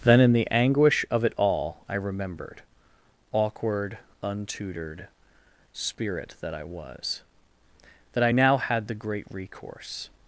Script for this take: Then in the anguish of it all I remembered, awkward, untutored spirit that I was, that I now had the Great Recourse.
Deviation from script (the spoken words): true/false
false